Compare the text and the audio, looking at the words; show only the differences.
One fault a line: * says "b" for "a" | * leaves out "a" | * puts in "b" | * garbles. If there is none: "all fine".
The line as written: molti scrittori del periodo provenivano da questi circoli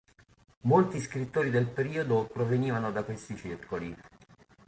all fine